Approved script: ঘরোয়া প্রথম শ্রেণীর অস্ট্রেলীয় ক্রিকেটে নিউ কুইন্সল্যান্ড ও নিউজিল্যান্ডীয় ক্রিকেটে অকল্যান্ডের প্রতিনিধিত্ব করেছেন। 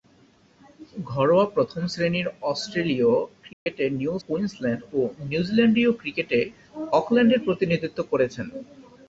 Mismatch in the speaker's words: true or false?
false